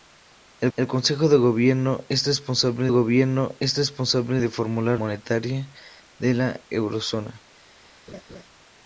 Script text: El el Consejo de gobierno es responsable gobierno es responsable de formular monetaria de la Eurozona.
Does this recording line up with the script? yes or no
yes